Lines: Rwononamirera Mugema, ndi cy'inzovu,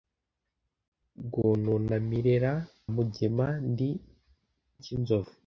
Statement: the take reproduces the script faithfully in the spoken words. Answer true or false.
true